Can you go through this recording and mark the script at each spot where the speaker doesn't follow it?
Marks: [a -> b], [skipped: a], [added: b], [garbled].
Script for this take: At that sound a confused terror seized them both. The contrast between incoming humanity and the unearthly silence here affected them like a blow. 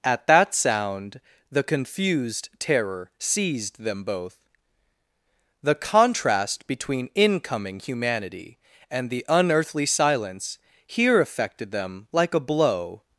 At that sound [a -> the] confused terror seized them both. The contrast between incoming humanity and the unearthly silence here affected them like a blow.